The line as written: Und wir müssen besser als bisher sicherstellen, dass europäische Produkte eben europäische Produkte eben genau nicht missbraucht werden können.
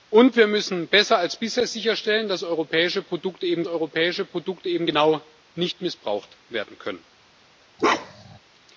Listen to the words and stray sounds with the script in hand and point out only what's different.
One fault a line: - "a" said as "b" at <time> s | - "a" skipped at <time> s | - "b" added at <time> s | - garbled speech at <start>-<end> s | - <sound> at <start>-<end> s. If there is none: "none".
- bark at 7.8-8.4 s